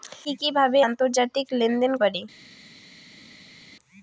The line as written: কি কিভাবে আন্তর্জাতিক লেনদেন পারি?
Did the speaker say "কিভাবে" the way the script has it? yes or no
yes